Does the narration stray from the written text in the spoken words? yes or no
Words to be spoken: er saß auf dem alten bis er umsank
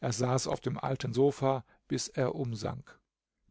yes